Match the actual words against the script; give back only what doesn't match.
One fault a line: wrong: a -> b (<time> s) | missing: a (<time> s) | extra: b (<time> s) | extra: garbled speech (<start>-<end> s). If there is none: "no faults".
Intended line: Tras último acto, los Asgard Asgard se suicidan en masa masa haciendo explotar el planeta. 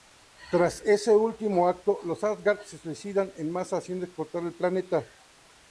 extra: ese (0.9 s)
missing: Asgard (2.6 s)
missing: masa (3.8 s)